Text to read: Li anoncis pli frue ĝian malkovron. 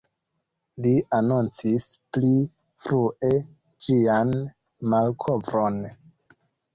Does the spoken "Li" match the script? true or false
true